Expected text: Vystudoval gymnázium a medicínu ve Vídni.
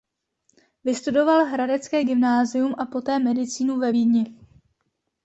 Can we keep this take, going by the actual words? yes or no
no